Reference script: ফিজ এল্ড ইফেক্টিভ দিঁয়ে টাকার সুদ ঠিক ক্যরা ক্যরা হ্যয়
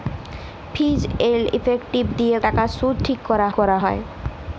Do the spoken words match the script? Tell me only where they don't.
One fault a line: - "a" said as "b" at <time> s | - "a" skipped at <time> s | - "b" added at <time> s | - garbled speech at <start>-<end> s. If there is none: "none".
none